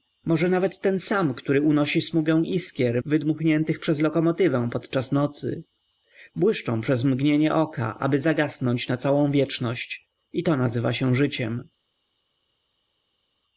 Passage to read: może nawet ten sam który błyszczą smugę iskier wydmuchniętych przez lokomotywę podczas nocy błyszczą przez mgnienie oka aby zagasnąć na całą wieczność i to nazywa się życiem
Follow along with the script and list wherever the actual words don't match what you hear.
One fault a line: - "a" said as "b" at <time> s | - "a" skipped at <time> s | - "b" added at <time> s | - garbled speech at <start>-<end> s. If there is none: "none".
- "błyszczą" said as "unosi" at 1.6 s